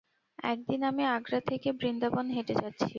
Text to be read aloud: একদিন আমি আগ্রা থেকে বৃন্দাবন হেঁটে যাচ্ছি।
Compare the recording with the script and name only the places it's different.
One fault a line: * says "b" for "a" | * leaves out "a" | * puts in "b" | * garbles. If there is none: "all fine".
all fine